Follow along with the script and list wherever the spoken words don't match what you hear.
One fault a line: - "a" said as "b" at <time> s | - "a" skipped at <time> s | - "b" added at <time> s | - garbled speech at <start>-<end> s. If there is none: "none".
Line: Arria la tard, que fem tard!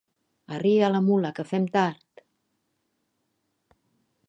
- "tard" said as "mula" at 1.1 s